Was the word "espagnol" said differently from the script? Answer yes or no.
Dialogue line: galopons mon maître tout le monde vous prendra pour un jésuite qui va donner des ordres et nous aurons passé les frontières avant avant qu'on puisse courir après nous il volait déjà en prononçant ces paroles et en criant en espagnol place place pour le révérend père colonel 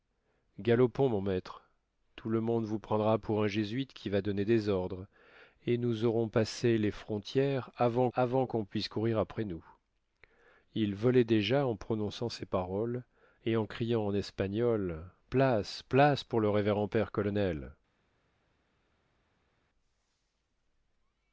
no